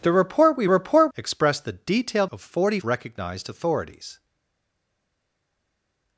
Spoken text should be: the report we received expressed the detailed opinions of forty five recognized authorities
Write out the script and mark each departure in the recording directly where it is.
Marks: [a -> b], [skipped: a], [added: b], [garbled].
the report we [received -> report] expressed the detailed [skipped: opinions] of forty [skipped: five] recognized authorities